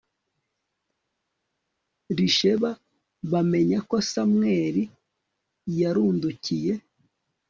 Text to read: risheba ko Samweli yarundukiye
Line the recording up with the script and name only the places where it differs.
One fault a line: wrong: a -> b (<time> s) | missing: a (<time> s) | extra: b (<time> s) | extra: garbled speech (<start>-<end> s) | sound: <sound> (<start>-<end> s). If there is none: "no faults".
extra: bamenya (3.3 s)